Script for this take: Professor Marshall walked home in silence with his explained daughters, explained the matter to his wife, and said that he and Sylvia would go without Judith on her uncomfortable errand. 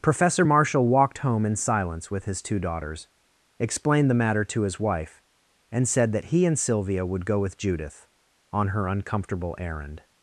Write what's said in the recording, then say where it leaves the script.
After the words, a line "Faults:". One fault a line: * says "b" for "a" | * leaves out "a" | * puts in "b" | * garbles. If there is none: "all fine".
Professor Marshall walked home in silence with his two daughters, explained the matter to his wife, and said that he and Sylvia would go with Judith on her uncomfortable errand.
Faults:
* says "two" for "explained"
* says "with" for "without"